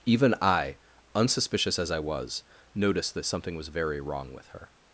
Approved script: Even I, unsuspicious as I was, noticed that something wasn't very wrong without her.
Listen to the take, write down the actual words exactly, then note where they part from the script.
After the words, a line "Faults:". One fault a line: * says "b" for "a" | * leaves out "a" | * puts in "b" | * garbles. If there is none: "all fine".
Even I, unsuspicious as I was, noticed that something was very wrong with her.
Faults:
* says "was" for "wasn't"
* says "with" for "without"